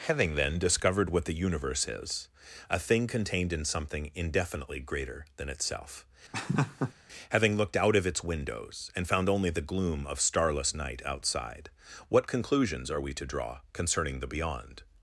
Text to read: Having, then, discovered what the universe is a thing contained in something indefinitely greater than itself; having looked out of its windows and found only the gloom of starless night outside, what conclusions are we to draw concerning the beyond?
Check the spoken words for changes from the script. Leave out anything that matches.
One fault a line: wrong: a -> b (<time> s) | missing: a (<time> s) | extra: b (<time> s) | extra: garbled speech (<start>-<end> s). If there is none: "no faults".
no faults